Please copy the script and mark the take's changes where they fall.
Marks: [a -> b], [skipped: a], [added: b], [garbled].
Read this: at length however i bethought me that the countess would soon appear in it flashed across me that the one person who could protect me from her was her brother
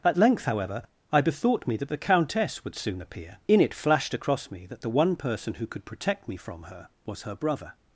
at length however i bethought me that the countess would soon appear in it flashed across me that the one person who could protect me from her was her brother